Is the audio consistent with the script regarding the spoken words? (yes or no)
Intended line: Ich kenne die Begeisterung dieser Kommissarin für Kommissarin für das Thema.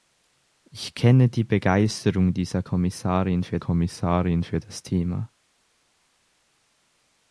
yes